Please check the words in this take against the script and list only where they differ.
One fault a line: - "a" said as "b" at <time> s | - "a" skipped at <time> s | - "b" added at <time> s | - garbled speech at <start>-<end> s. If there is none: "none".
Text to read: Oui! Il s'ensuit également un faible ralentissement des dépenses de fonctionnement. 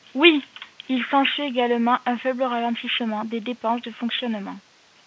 none